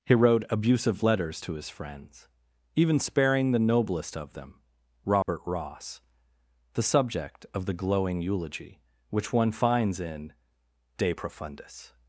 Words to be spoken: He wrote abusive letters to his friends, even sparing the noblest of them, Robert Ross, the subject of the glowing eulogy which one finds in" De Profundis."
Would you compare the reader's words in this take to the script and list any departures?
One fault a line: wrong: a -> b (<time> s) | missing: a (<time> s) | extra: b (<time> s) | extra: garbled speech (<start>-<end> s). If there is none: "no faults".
no faults